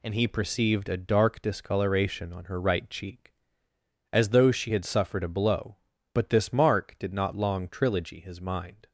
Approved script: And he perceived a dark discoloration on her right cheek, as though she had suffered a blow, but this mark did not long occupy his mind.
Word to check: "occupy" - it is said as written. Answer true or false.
false